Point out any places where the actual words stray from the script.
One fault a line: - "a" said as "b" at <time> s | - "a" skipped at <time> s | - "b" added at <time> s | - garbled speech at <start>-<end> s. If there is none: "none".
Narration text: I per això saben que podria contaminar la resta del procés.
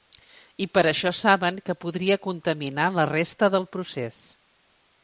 none